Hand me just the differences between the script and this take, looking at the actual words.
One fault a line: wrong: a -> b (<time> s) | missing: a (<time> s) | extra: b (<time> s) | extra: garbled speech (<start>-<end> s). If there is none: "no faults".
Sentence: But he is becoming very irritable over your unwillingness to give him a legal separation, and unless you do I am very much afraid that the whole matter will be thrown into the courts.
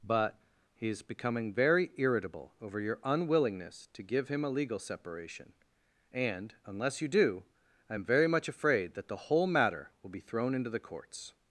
no faults